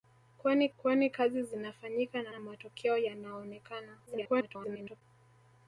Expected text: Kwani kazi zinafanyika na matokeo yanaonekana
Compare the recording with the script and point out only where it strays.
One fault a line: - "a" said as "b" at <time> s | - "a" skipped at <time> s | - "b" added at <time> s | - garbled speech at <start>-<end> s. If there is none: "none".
- "kwani" added at 0.8 s
- "na" added at 2.3 s
- garbled speech at 4.1-5.0 s